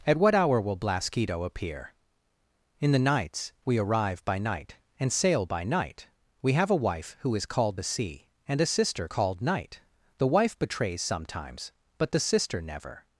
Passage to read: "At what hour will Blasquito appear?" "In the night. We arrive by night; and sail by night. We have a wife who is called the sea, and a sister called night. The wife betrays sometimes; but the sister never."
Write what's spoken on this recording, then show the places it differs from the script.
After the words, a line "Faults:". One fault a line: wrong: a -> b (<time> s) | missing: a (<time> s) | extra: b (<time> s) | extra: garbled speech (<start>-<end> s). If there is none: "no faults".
"At what hour will Blasquito appear?" "In the nights. We arrive by night; and sail by night. We have a wife who is called the sea, and a sister called night. The wife betrays sometimes; but the sister never."
Faults:
wrong: night -> nights (3.0 s)